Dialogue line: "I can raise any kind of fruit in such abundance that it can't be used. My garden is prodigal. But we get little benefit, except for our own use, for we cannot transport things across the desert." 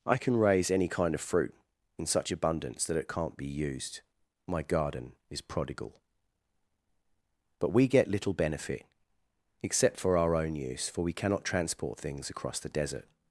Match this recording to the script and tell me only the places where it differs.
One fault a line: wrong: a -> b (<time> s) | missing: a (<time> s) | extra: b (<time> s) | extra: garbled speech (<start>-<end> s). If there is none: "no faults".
no faults